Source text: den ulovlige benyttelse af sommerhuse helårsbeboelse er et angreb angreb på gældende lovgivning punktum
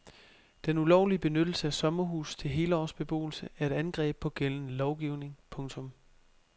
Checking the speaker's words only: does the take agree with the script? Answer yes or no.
no